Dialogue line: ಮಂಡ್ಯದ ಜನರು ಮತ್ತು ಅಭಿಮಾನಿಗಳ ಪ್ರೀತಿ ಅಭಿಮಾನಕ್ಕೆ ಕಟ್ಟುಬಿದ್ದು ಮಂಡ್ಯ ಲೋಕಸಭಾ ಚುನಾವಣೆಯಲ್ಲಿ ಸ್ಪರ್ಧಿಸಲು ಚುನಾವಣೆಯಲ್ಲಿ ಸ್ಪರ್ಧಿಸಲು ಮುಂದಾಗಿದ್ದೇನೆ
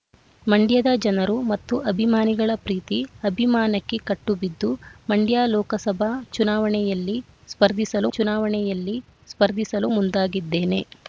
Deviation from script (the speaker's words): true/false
false